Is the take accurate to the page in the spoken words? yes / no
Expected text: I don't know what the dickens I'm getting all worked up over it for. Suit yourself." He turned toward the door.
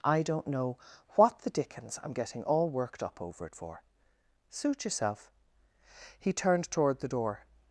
yes